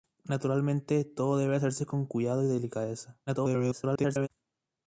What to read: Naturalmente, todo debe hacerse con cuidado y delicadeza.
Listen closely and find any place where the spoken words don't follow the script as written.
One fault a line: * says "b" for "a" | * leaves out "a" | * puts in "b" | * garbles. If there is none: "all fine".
* garbles